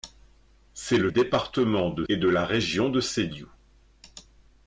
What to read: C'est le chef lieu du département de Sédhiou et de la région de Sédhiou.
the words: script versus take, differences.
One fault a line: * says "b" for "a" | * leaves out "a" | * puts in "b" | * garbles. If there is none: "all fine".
* leaves out "chef lieu du"
* leaves out "Sédhiou"